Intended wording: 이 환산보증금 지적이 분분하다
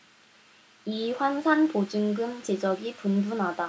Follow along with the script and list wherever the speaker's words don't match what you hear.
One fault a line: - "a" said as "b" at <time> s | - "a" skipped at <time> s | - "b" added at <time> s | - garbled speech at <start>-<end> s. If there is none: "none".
none